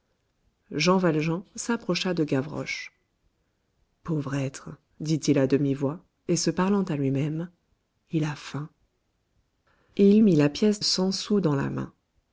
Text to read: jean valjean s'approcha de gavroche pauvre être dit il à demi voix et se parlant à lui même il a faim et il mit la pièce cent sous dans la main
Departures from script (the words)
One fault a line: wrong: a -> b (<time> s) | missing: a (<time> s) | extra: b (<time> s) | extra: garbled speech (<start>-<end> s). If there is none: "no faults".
no faults